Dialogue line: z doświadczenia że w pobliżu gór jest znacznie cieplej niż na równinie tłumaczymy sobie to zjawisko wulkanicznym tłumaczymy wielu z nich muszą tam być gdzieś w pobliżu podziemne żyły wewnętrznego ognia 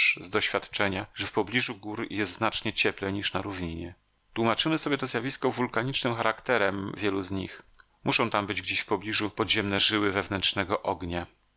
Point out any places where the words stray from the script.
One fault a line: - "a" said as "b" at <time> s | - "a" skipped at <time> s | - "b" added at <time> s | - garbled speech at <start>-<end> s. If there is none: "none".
- "tłumaczymy" said as "charakterem" at 6.2 s